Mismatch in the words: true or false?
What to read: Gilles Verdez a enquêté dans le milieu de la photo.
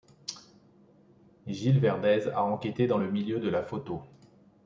false